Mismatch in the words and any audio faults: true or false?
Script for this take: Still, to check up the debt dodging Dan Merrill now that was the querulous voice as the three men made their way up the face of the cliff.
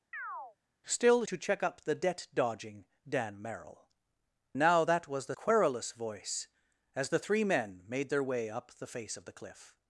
true